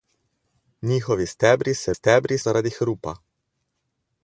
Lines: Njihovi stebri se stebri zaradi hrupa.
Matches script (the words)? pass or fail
pass